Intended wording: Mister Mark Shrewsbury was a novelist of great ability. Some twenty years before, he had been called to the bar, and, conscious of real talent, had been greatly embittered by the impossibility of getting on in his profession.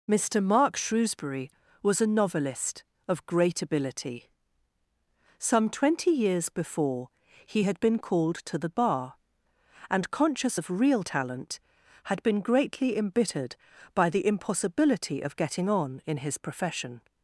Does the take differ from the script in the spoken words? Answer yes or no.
no